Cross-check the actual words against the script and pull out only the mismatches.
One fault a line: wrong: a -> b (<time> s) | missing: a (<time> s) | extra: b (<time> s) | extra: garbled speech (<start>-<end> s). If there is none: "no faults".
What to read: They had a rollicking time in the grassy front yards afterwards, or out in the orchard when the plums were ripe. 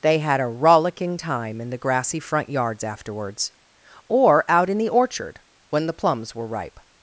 no faults